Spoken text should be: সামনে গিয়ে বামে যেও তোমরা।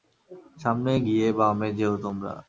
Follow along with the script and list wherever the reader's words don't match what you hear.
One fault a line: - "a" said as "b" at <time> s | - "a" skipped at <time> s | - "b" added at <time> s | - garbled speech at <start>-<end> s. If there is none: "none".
none